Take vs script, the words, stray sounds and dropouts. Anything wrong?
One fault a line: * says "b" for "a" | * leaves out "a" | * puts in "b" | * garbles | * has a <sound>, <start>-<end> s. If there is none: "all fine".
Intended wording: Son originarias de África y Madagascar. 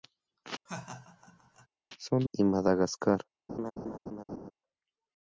* has a laugh, 0.7-1.7 s
* leaves out "originarias de África"
* has a laugh, 3.5-4.5 s